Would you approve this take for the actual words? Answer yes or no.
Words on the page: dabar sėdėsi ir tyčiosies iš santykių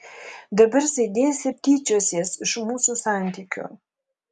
no